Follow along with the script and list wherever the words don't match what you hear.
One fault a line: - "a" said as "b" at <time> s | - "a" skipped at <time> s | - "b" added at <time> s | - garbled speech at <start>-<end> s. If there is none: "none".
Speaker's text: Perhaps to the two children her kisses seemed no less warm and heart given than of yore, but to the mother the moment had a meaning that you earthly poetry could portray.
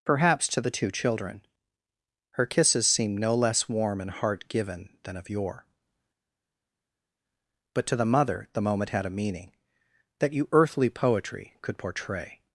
none